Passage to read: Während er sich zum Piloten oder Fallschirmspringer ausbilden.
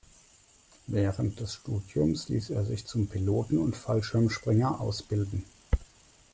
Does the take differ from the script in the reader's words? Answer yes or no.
yes